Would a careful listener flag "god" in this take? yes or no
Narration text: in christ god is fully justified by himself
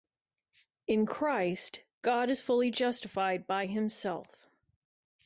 no